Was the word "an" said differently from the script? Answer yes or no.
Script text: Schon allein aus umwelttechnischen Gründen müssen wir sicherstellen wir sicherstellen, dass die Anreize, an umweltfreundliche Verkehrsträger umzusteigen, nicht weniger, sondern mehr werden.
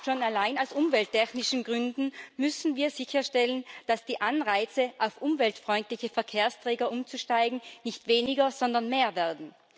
yes